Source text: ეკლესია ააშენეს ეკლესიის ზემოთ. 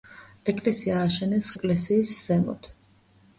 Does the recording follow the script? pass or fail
pass